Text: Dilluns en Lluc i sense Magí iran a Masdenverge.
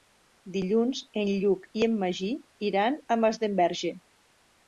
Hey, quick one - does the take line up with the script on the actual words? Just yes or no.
no